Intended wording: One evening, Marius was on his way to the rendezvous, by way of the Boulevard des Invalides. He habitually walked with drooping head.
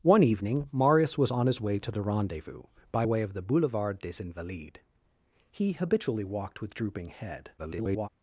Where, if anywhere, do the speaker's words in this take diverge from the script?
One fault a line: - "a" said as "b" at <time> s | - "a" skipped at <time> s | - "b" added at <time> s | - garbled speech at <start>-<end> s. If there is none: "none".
- garbled speech at 7.6-8.1 s